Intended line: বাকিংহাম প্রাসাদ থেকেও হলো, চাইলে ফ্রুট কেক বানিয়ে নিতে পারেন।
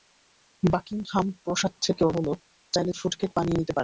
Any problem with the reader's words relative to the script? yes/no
no